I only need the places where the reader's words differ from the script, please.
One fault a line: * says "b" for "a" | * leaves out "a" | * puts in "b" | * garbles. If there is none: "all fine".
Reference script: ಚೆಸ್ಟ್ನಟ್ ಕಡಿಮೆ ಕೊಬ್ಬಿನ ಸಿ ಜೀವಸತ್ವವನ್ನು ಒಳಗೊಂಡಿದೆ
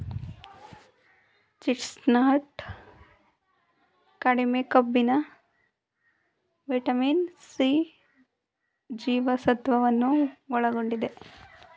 * puts in "ವಿಟಮಿನ್"